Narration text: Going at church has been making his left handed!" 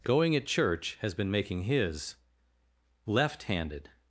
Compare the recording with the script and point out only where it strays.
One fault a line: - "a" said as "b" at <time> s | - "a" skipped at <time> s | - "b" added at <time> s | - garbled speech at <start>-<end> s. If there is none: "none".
none